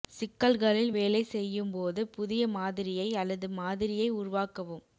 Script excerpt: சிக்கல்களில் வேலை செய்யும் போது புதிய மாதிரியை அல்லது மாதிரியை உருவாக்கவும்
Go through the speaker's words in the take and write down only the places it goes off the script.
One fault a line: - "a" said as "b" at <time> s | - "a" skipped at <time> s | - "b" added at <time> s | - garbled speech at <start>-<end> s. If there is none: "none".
none